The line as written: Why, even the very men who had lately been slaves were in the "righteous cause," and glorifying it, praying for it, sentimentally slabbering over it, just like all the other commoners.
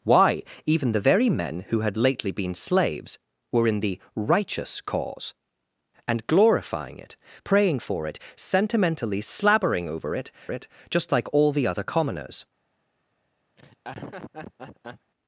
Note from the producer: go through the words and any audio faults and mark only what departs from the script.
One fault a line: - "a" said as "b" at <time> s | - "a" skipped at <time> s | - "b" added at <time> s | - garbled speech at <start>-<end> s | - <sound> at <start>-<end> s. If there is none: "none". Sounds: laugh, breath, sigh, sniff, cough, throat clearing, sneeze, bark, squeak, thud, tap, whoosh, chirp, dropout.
- "it" added at 10.5 s
- laugh at 13.6-15.1 s